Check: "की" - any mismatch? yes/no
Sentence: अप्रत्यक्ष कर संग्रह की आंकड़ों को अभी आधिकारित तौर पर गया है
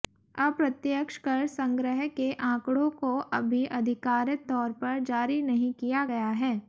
yes